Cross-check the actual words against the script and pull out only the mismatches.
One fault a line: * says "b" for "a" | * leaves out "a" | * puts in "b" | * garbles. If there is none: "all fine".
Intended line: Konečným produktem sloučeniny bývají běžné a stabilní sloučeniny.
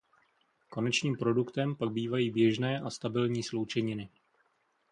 * says "pak" for "sloučeniny"